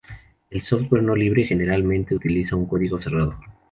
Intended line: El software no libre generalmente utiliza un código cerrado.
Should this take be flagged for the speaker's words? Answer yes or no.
no